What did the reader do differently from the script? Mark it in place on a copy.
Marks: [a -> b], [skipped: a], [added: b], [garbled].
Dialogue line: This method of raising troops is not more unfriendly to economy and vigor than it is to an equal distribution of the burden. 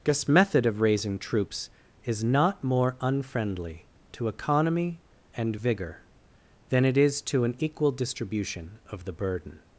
This method of raising troops is not more unfriendly to economy and vigor than it is to an equal distribution of the burden.